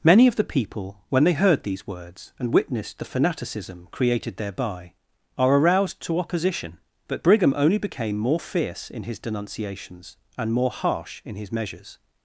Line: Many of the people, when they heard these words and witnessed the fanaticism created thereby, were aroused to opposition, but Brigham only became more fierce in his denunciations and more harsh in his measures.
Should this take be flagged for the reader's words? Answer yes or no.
yes